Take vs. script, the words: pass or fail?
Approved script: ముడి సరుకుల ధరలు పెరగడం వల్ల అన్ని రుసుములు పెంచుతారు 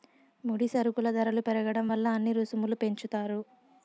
pass